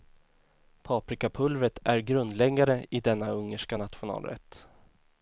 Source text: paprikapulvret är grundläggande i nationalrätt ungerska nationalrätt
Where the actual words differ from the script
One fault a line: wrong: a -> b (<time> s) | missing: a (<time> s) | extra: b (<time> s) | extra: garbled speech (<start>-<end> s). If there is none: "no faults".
wrong: nationalrätt -> denna (3.0 s)